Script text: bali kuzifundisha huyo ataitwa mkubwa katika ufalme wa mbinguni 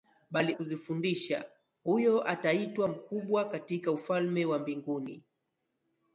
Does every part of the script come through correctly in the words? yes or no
yes